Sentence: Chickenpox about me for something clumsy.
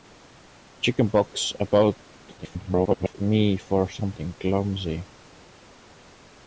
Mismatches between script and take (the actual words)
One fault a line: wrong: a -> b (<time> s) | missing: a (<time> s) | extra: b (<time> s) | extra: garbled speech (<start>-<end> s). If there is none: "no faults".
extra: garbled speech (2.4-3.2 s)